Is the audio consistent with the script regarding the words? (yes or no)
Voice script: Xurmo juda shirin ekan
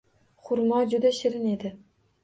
no